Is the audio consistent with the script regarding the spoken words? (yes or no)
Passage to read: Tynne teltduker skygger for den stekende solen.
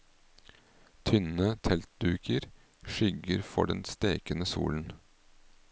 yes